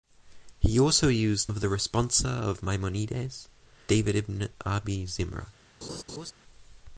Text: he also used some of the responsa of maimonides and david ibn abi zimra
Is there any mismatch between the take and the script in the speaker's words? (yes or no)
yes